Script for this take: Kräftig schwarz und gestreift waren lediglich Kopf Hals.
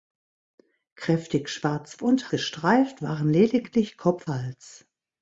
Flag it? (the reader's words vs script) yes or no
no